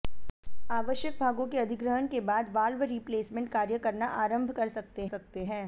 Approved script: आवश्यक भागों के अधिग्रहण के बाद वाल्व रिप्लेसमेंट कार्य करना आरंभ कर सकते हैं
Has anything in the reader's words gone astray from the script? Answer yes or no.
yes